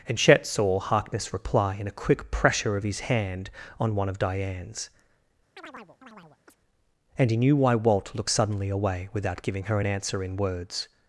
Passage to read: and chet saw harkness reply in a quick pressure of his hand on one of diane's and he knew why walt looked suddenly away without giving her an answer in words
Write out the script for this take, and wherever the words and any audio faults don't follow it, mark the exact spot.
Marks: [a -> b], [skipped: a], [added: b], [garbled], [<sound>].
and chet saw harkness reply in a quick pressure of his hand on one of diane's [chirp] and he knew why walt looked suddenly away without giving her an answer in words